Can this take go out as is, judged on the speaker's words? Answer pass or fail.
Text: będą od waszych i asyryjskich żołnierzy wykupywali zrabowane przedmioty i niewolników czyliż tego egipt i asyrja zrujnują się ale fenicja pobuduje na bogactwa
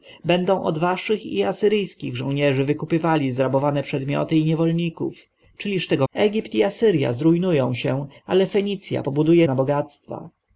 pass